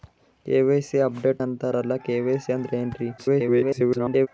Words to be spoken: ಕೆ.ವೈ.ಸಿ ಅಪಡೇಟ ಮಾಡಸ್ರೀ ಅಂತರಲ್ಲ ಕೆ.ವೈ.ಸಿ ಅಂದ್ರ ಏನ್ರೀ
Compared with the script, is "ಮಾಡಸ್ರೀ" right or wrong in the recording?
wrong